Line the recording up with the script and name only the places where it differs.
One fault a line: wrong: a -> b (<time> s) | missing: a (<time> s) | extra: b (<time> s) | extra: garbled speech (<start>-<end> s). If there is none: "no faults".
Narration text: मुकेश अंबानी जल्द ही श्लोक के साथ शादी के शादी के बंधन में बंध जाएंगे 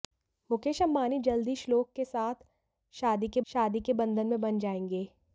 no faults